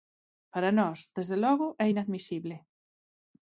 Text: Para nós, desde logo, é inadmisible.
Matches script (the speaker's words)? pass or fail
pass